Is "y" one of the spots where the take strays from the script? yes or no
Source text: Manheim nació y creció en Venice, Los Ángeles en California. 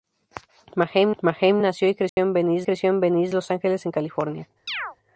no